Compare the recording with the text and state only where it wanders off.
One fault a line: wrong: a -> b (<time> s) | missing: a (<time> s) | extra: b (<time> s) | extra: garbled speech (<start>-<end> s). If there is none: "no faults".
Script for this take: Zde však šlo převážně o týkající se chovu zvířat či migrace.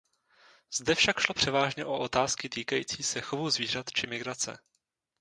extra: otázky (2.0 s)